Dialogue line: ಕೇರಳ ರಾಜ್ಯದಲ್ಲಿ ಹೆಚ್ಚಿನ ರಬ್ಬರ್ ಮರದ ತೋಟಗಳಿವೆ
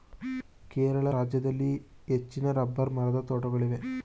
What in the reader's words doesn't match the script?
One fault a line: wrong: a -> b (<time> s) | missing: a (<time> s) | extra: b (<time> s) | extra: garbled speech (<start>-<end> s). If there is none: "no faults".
no faults